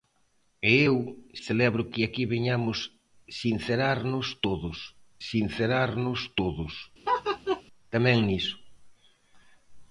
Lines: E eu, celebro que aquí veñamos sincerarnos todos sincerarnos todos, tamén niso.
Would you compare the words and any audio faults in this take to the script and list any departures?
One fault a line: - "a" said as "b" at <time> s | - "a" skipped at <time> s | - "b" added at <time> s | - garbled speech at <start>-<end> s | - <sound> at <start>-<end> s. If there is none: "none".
- laugh at 7.0-7.6 s